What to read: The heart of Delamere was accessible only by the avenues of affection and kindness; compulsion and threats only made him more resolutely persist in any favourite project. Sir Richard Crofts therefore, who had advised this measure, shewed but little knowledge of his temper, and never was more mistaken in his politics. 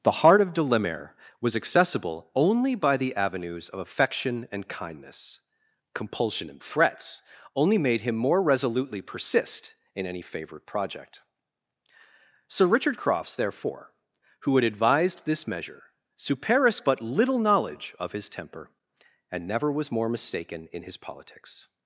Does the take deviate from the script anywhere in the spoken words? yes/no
yes